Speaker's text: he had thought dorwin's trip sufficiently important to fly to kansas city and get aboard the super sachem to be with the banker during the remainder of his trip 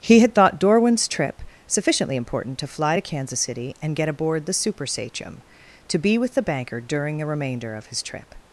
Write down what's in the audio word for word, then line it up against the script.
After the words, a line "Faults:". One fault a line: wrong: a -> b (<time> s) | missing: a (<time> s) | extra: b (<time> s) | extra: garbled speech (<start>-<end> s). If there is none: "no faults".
he had thought dorwin's trip sufficiently important to fly to kansas city and get aboard the super sachem to be with the banker during the remainder of his trip
Faults:
no faults